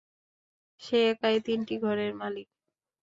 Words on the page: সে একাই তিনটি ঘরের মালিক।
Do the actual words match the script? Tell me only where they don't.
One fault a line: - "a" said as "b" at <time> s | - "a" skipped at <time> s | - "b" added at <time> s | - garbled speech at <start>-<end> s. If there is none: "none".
none